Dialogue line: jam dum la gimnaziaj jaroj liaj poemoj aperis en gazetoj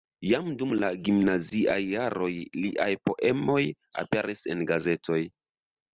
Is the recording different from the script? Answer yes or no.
no